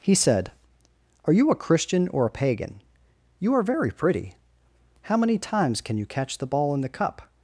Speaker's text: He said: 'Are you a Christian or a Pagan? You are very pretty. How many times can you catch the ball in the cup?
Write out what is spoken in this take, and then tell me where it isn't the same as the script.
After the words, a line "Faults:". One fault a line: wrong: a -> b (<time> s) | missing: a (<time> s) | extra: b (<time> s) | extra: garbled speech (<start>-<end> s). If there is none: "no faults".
He said: 'Are you a Christian or a Pagan? You are very pretty. How many times can you catch the ball in the cup?
Faults:
no faults